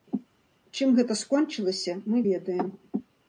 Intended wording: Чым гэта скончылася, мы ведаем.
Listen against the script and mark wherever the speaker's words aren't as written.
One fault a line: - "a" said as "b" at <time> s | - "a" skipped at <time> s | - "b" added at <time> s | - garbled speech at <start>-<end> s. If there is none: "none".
none